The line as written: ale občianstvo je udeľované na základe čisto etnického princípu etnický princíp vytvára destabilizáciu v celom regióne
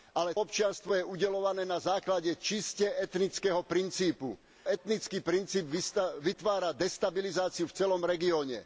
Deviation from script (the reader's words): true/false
false